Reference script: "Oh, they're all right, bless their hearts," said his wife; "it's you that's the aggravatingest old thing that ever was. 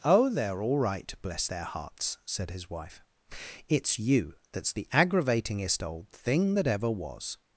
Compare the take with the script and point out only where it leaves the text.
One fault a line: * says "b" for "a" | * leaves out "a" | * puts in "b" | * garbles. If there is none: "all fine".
all fine